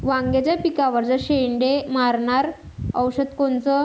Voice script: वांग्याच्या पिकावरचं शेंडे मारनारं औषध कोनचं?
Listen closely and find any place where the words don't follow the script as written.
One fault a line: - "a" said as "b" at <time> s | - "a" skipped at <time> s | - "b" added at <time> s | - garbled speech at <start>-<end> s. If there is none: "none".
none